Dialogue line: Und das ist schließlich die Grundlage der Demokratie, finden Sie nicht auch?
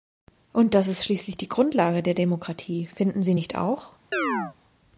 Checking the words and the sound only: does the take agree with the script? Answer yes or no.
no